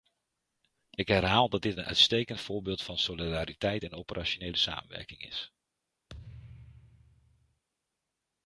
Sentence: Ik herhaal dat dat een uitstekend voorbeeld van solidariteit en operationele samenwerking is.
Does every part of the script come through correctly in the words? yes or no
no